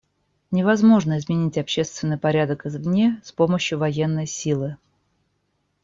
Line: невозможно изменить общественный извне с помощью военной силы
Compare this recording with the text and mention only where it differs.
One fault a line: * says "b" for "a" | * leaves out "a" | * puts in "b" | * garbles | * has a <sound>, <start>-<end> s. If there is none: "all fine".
* puts in "порядок"